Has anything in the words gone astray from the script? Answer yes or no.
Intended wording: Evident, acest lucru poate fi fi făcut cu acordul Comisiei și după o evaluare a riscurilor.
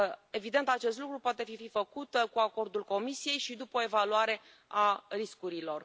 no